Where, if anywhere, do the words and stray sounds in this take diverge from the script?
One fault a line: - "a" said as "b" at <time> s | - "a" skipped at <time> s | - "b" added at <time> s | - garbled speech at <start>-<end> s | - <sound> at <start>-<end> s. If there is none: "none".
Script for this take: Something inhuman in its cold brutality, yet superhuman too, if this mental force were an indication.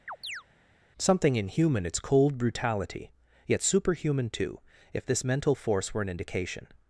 - chirp at 0.1-0.4 s
- "in" skipped at 1.8 s